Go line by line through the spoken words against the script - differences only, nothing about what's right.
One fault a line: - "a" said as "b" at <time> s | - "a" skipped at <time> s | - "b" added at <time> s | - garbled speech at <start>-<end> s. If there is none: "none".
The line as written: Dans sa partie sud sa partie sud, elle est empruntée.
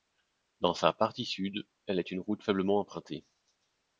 - "sa partie sud elle est" said as "elle est une route faiblement" at 1.9 s